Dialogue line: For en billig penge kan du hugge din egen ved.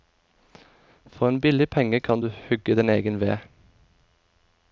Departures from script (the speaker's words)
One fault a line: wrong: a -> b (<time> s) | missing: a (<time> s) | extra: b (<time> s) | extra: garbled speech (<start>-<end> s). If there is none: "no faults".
no faults